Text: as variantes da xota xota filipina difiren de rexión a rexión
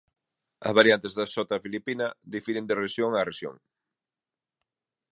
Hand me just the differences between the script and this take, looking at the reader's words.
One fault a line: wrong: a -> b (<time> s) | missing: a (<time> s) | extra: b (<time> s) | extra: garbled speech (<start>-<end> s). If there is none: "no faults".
missing: xota (1.6 s)